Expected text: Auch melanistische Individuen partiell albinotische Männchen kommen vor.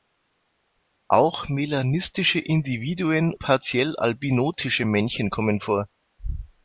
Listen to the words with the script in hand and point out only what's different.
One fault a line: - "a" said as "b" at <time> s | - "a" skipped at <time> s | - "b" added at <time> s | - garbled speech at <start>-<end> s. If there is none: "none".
none